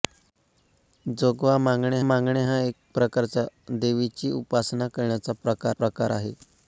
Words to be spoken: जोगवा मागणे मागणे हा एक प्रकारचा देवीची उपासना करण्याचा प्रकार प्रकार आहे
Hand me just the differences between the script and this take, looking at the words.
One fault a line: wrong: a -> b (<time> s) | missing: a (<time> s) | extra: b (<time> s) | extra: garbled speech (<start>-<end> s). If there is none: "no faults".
no faults